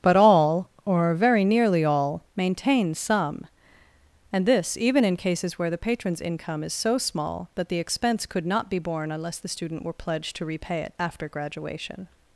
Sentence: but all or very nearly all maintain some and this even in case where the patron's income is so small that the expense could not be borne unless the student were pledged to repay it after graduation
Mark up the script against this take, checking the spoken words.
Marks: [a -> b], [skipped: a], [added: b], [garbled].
but all or very nearly all maintain some and this even in [case -> cases] where the patron's income is so small that the expense could not be borne unless the student were pledged to repay it after graduation